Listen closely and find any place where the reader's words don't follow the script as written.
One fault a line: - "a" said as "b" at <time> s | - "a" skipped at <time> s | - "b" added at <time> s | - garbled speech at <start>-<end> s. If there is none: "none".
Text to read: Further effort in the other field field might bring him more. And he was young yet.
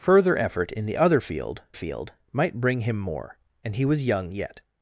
none